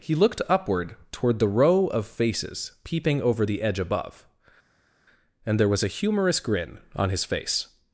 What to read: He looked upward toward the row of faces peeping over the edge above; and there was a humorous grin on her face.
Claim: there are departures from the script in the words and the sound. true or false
true